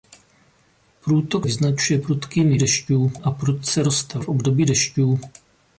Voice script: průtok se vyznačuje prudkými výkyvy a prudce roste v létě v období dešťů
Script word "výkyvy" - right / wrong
wrong